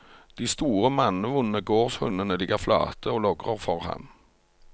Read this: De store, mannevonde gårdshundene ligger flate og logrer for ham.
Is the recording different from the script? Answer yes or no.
no